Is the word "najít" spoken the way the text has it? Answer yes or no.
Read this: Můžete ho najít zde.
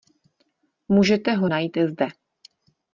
yes